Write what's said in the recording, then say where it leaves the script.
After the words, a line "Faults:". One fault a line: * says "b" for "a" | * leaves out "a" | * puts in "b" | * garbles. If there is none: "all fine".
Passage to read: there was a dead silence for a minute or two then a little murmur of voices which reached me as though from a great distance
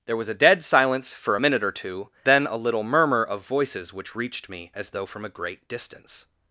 there was a dead silence for a minute or two then a little murmur of voices which reached me as though from a great distance
Faults:
all fine